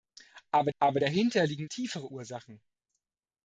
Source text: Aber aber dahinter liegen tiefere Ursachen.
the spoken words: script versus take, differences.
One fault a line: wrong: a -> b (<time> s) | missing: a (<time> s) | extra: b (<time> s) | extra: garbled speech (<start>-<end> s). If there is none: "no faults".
no faults